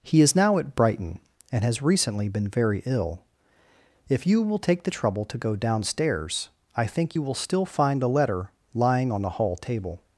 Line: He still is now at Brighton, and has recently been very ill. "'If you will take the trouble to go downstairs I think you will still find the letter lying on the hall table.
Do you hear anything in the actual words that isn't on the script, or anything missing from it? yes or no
yes